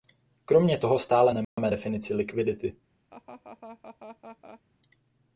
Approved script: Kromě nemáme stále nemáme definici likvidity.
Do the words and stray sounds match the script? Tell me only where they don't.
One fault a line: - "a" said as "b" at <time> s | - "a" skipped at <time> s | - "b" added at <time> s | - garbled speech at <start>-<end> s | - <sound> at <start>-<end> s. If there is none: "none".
- "nemáme" said as "toho" at 0.8 s
- dropout at 1.4-1.6 s
- laugh at 3.1-4.6 s